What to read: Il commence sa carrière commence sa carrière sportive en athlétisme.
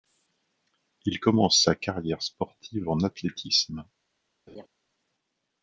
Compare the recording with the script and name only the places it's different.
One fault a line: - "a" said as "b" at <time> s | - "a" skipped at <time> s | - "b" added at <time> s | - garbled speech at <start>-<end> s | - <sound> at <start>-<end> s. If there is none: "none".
- "commence sa carrière" skipped at 2.2 s
- laugh at 4.5-4.7 s